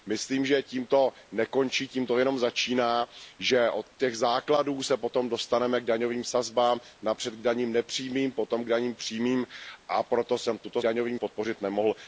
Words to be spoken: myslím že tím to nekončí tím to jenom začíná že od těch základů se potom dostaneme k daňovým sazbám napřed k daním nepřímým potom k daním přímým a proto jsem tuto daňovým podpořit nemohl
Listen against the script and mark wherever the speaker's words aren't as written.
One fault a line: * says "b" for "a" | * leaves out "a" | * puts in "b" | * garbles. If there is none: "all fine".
all fine